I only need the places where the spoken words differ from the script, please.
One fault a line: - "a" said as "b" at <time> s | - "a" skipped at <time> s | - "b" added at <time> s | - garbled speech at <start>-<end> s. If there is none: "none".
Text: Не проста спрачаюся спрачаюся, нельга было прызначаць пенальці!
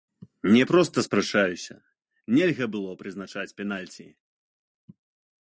- "спрачаюся" skipped at 1.8 s